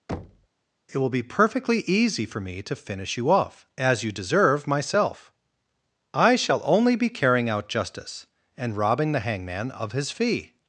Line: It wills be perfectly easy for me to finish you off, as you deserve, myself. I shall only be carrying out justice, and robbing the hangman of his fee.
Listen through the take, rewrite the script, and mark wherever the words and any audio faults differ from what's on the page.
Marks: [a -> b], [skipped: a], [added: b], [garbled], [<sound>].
[thud] It [wills -> will] be perfectly easy for me to finish you off, as you deserve, myself. I shall only be carrying out justice, and robbing the hangman of his fee.